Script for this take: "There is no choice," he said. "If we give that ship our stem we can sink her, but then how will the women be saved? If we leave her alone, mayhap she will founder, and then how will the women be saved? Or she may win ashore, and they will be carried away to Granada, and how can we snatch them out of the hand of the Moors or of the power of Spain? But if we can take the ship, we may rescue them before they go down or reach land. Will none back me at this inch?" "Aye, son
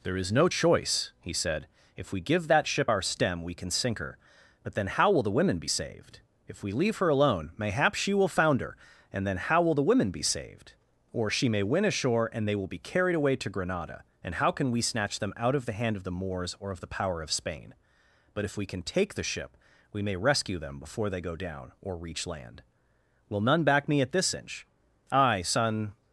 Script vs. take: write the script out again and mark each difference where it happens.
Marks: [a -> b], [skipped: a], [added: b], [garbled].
"There is no choice," he said. "If we give that ship our stem we can sink her, but then how will the women be saved? If we leave her alone, mayhap she will founder, and then how will the women be saved? Or she may win ashore, and they will be carried away to Granada, and how can we snatch them out of the hand of the Moors or of the power of Spain? But if we can take the ship, we may rescue them before they go down or reach land. Will none back me at this inch?" "Aye, son